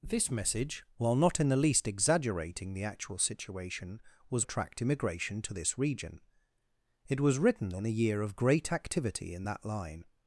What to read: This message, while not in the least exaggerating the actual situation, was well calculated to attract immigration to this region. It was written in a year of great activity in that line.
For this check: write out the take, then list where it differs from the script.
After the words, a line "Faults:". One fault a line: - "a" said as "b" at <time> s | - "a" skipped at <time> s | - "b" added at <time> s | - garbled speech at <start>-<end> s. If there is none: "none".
This message, while not in the least exaggerating the actual situation, was attract immigration to this region. It was written in a year of great activity in that line.
Faults:
- "well calculated to" skipped at 4.5 s